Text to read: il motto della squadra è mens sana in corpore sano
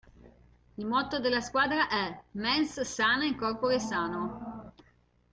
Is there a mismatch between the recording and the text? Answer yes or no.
no